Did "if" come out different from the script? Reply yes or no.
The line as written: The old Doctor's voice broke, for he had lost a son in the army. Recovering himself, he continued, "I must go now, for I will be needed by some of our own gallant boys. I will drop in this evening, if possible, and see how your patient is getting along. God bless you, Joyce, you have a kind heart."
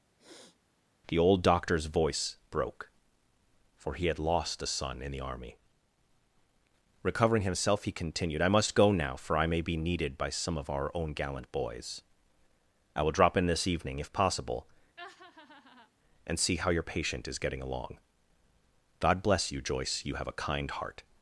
no